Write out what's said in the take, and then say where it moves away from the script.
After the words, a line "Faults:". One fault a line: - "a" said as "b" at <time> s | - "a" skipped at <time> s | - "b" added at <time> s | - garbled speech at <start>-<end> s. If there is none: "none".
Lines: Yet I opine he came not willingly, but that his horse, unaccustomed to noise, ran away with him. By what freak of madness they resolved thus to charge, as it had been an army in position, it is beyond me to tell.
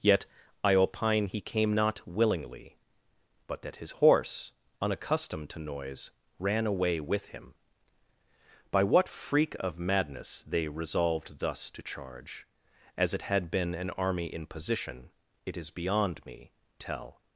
Yet I opine he came not willingly, but that his horse, unaccustomed to noise, ran away with him. By what freak of madness they resolved thus to charge, as it had been an army in position, it is beyond me tell.
Faults:
- "to" skipped at 16.5 s